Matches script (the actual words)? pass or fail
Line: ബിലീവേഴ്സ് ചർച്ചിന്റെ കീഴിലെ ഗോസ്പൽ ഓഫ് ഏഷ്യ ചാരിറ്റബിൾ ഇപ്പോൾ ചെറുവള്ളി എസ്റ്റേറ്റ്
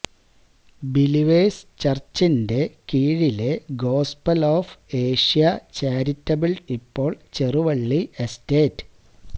pass